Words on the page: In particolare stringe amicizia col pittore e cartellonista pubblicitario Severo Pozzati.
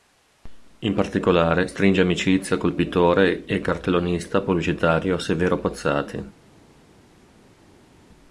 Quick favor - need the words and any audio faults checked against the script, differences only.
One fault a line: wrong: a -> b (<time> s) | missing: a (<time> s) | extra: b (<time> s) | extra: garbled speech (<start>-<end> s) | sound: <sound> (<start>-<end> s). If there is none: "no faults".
no faults